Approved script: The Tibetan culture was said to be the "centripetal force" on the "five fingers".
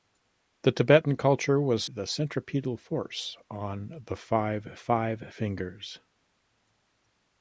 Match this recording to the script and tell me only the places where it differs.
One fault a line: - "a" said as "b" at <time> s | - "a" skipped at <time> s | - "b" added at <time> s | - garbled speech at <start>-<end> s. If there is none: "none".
- "said to be" skipped at 1.9 s
- "five" added at 4.7 s